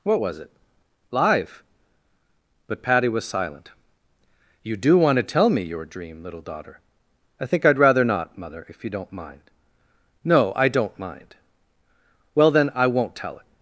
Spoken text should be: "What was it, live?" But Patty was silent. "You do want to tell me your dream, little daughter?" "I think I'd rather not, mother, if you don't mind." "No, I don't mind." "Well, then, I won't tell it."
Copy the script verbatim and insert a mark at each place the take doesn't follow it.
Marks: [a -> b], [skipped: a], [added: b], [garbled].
"What was it, live?" But Patty was silent. "You do want to tell me your dream, little daughter?" "I think I'd rather not, mother, if you don't mind." "No, I don't mind." "Well, then, I won't tell it."